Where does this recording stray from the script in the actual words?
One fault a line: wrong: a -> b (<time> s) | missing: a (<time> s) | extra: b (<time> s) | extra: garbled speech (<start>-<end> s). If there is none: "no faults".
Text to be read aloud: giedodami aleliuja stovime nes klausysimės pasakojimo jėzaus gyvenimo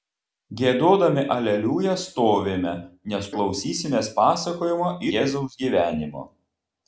no faults